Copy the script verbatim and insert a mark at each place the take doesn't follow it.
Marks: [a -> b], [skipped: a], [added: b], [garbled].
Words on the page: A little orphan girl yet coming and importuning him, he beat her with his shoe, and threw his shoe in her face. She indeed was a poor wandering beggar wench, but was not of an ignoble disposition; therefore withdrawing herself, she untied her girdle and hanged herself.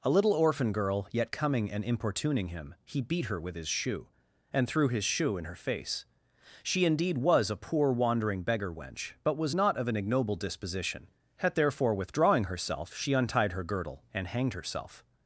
A little orphan girl yet coming and importuning him, he beat her with his shoe, and threw his shoe in her face. She indeed was a poor wandering beggar wench, but was not of an ignoble disposition; [added: had] therefore withdrawing herself, she untied her girdle and hanged herself.